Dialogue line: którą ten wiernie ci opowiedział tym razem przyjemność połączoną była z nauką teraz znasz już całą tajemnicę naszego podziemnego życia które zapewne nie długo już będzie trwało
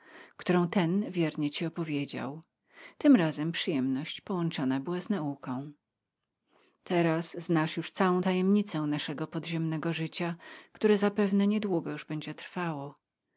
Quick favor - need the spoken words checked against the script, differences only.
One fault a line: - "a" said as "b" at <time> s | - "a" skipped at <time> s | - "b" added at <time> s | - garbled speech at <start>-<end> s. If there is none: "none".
none